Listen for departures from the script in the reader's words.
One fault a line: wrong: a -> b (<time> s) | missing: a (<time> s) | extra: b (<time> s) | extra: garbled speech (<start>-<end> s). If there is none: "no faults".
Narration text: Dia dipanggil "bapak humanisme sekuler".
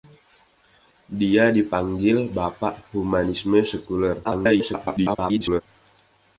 extra: garbled speech (4.2-5.6 s)